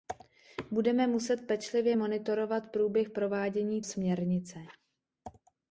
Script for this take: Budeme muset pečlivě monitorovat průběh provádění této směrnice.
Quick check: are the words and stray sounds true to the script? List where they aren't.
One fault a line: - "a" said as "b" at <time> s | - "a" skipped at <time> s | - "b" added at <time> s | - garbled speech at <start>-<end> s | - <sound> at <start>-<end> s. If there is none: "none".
- "této" skipped at 3.8 s